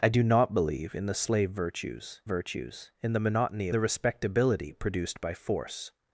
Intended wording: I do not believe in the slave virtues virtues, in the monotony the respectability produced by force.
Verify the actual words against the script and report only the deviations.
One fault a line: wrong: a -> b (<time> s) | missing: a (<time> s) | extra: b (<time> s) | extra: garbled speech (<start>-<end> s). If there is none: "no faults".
no faults